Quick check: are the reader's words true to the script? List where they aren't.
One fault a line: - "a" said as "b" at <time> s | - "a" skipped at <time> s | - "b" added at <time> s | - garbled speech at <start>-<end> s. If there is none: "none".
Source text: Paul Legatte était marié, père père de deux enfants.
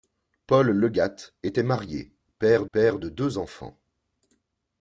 none